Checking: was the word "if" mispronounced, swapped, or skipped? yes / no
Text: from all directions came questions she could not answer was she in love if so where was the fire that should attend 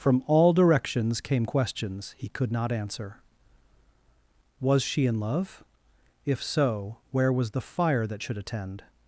no